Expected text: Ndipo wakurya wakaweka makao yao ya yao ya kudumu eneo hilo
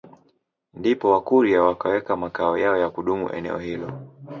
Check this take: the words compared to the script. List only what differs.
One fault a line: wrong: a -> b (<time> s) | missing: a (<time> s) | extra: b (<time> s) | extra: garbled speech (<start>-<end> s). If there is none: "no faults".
missing: yao ya (2.9 s)